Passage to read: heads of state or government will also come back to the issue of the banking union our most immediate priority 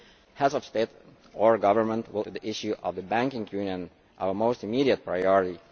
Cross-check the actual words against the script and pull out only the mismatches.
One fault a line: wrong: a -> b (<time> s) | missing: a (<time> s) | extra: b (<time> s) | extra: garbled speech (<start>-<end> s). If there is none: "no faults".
missing: also come back (2.2 s)